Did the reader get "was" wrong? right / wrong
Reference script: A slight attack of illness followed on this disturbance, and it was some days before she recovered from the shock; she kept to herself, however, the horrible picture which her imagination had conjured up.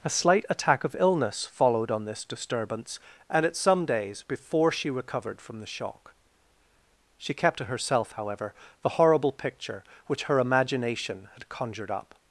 wrong